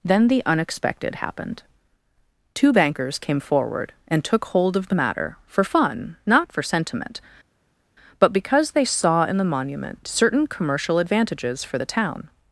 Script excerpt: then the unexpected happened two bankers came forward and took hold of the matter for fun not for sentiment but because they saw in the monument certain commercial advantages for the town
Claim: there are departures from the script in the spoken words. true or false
false